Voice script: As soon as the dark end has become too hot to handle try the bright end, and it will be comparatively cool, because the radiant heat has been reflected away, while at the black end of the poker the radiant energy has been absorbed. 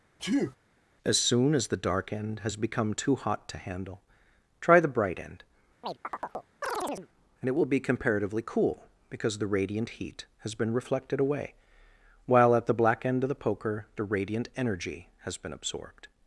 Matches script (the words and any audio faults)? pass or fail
fail